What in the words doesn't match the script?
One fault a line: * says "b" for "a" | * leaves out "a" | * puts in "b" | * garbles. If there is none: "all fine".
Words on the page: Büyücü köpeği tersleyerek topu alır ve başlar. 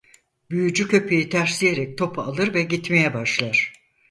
* puts in "gitmeye"